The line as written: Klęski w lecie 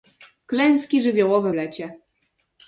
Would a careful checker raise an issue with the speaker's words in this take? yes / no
yes